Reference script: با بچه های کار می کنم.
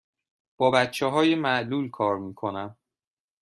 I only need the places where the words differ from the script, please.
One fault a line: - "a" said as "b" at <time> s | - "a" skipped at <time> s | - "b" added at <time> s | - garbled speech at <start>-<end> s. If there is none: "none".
- "معلول" added at 1.3 s